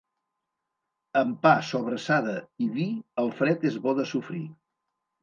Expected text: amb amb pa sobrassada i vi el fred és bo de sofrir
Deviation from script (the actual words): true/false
true